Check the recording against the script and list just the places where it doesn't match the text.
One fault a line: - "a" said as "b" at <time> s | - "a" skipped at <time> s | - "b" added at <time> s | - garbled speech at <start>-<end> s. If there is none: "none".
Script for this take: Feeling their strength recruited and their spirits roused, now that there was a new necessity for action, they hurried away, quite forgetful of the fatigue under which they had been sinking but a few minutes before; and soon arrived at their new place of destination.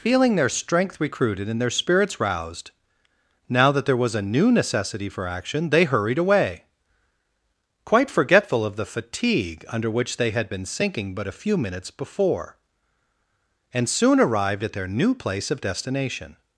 none